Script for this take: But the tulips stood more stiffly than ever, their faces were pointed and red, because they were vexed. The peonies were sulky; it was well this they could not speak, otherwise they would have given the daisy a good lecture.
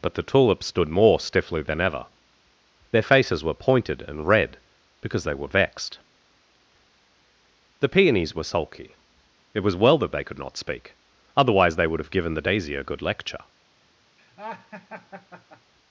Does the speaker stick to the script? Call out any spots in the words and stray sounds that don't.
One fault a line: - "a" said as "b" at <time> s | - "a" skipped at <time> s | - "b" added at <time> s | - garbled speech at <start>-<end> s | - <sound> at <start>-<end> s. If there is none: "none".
- "this" said as "that" at 10.0 s
- laugh at 14.2-15.7 s